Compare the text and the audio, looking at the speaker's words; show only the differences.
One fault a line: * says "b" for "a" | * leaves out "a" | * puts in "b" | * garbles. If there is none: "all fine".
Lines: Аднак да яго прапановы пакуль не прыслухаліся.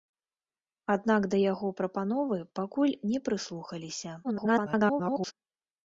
* garbles